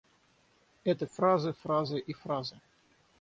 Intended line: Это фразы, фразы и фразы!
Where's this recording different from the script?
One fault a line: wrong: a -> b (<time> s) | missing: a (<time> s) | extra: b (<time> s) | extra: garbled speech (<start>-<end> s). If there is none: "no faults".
no faults